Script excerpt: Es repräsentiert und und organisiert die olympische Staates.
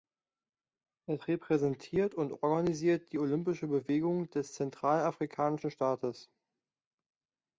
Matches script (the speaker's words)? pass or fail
fail